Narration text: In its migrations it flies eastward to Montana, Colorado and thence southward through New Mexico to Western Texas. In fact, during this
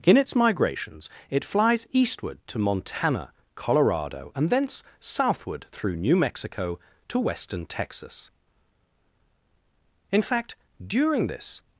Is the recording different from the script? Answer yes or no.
no